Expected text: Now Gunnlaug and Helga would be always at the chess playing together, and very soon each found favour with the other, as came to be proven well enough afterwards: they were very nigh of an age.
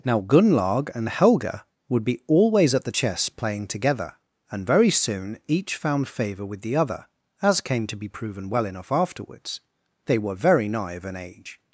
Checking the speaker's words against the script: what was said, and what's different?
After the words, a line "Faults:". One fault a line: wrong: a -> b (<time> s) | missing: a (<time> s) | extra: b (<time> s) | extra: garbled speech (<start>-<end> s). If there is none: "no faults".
Now Gunnlaug and Helga would be always at the chess playing together, and very soon each found favour with the other, as came to be proven well enough afterwards: they were very nigh of an age.
Faults:
no faults